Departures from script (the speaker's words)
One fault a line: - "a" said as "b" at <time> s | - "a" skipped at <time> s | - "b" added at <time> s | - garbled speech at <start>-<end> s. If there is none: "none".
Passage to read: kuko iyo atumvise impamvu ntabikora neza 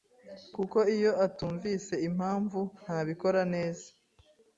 none